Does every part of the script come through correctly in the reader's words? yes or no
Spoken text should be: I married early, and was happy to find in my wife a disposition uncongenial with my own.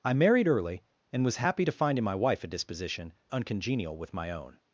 yes